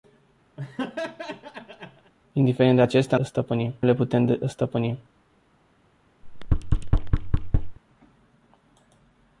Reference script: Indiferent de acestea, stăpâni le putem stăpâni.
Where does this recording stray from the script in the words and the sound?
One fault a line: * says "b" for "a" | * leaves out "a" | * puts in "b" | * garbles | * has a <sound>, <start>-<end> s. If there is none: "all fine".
* has a laugh, 0.6-2.1 s
* has a thud, 6.2-7.8 s